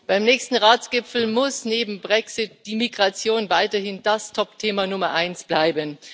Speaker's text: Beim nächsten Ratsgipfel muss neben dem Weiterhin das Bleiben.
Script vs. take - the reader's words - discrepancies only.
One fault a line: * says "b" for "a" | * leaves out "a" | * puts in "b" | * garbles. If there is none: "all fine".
* puts in "Brexit die Migration"
* puts in "Topthema Nummer eins"